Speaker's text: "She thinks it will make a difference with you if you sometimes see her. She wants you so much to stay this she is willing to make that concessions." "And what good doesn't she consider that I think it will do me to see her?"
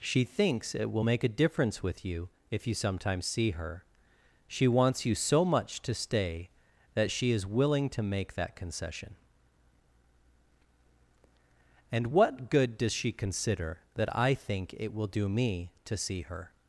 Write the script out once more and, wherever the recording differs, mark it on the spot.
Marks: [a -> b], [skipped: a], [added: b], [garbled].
"She thinks it will make a difference with you if you sometimes see her. She wants you so much to stay [this -> that] she is willing to make that [concessions." -> concession] "And what good [doesn't -> does] she consider that I think it will do me to see her?"